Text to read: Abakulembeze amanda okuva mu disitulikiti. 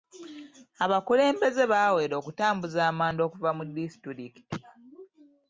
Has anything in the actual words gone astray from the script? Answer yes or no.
yes